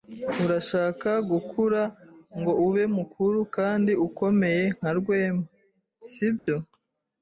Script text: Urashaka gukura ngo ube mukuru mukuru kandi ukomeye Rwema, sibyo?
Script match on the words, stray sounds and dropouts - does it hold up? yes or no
no